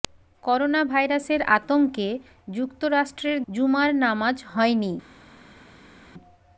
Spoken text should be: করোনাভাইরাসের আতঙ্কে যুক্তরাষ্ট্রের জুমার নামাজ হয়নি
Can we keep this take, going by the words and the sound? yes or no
yes